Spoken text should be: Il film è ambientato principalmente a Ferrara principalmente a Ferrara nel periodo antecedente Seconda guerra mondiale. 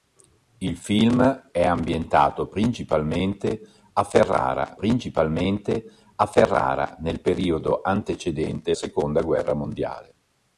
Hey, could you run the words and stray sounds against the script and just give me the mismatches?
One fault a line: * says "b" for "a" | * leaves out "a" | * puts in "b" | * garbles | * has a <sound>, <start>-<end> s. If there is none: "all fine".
all fine